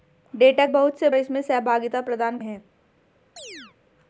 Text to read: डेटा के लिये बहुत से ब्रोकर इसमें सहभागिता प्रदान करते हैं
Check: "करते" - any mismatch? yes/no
yes